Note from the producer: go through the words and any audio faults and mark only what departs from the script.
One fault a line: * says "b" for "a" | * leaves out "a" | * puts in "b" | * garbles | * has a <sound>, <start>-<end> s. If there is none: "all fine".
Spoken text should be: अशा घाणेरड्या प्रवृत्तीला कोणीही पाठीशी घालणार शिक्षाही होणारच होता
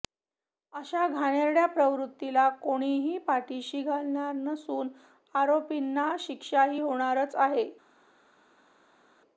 * puts in "नसून आरोपींना"
* says "आहे" for "होता"